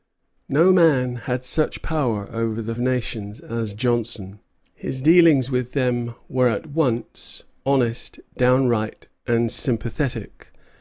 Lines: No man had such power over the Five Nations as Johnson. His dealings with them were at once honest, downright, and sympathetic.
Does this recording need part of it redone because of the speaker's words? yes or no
yes